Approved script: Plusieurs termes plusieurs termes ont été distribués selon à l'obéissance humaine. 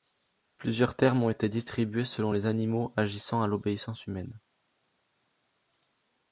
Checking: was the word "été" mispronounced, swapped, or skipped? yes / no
no